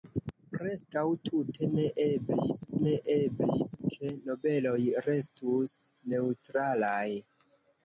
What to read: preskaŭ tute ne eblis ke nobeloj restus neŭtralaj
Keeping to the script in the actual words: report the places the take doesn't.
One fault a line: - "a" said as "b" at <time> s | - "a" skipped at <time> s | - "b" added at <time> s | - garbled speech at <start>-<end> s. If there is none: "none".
- "ne eblis" added at 2.8 s